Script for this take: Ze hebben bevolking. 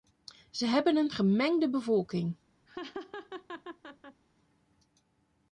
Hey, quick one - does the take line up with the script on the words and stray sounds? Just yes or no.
no